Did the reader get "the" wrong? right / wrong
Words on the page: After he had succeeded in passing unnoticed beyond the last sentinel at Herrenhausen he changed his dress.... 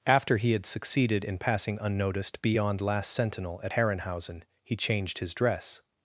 wrong